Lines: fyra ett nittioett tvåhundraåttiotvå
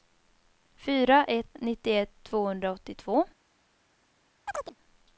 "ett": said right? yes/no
yes